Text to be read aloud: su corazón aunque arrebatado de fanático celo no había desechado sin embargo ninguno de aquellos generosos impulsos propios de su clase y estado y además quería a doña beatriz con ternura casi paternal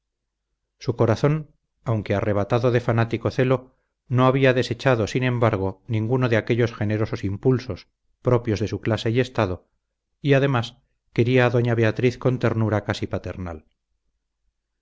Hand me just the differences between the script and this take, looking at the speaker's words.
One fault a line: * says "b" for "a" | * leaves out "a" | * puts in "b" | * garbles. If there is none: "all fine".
all fine